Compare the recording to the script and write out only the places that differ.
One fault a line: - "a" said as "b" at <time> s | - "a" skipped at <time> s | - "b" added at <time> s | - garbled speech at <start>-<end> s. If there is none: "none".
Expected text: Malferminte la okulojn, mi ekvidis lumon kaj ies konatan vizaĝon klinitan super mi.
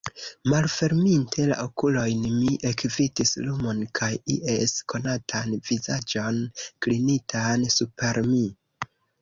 none